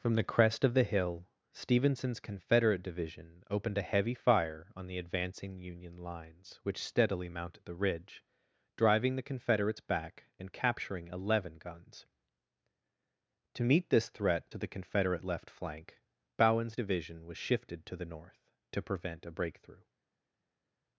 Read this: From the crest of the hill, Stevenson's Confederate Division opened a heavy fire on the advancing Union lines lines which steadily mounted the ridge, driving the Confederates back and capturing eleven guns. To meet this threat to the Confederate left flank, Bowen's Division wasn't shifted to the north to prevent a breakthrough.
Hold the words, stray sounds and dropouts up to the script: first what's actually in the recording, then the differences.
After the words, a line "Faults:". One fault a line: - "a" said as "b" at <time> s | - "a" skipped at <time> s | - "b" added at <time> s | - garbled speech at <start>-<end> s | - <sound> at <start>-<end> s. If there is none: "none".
From the crest of the hill, Stevenson's Confederate Division opened a heavy fire on the advancing Union lines which steadily mounted the ridge, driving the Confederates back and capturing eleven guns. To meet this threat to the Confederate left flank, Bowen's Division was shifted to the north to prevent a breakthrough.
Faults:
- "lines" skipped at 6.6 s
- "wasn't" said as "was" at 17.3 s